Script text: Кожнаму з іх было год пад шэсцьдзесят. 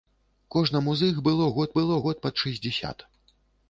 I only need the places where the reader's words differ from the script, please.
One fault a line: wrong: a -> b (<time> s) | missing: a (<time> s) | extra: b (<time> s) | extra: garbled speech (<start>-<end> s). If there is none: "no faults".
extra: было год (1.8 s)